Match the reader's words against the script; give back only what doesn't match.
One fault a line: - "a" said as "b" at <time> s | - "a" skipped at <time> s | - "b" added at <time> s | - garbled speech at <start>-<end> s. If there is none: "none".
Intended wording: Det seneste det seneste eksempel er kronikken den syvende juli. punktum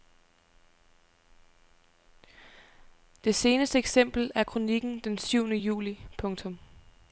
- "det seneste" skipped at 3.8 s